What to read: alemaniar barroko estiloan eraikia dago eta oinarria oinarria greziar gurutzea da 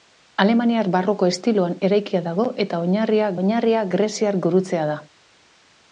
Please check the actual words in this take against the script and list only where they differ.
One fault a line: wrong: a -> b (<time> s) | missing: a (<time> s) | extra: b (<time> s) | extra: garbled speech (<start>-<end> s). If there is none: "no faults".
no faults